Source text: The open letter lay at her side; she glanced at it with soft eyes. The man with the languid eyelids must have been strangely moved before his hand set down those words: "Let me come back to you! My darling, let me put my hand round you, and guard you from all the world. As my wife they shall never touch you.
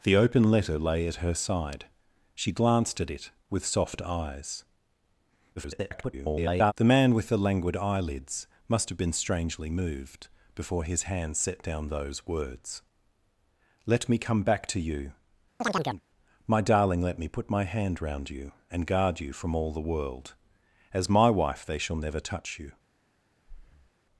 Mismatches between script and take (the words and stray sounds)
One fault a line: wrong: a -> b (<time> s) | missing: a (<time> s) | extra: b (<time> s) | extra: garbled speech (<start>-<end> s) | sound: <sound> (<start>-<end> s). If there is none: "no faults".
extra: garbled speech (5.6-6.7 s)
sound: chirp (15.6-16.0 s)
sound: breath (23.5-23.9 s)